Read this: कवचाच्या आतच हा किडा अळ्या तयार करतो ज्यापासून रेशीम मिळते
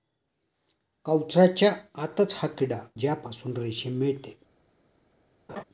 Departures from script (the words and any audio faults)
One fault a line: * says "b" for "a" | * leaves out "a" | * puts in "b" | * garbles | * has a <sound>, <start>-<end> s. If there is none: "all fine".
* leaves out "अळ्या तयार करतो"
* has a laugh, 5.5-5.6 s